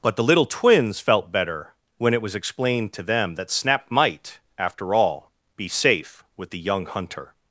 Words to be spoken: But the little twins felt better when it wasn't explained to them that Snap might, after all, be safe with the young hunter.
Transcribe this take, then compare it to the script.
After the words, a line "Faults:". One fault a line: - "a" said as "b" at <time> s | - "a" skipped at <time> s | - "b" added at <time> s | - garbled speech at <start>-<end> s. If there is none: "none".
But the little twins felt better when it was explained to them that Snap might, after all, be safe with the young hunter.
Faults:
- "wasn't" said as "was" at 2.2 s